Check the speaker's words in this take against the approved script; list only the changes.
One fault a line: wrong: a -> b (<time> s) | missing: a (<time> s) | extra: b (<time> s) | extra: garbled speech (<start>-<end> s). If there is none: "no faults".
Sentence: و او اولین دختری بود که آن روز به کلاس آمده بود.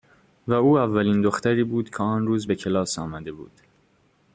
no faults